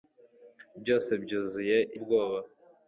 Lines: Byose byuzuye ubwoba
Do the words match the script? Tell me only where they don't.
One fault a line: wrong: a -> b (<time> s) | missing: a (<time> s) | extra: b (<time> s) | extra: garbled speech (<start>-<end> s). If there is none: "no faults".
no faults